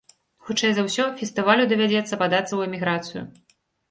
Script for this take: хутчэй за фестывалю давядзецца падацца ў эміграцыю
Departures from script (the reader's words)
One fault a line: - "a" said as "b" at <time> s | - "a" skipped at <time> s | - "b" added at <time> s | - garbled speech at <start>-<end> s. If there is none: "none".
- "ўсё" added at 0.8 s